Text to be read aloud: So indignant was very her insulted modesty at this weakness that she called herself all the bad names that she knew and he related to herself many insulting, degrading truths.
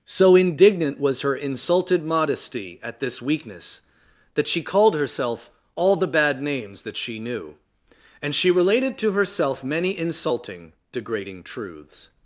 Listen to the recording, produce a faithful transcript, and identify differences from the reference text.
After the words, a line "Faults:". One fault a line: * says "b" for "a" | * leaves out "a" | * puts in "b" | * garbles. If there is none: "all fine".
So indignant was her insulted modesty at this weakness that she called herself all the bad names that she knew and she related to herself many insulting, degrading truths.
Faults:
* leaves out "very"
* says "she" for "he"